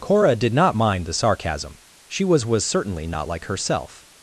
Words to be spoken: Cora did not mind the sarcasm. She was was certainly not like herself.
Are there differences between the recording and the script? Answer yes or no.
no